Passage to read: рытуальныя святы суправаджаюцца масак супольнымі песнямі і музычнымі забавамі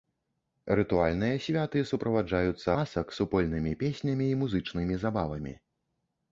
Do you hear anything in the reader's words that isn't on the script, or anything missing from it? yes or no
no